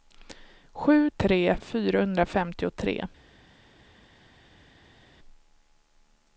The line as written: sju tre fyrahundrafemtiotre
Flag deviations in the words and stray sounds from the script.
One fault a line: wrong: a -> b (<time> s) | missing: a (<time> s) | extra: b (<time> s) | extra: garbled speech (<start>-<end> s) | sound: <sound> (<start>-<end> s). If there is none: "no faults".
no faults